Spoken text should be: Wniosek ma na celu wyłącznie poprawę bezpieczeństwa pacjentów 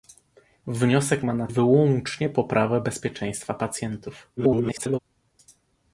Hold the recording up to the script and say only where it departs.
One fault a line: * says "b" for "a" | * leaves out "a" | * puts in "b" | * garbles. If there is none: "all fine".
* leaves out "celu"
* garbles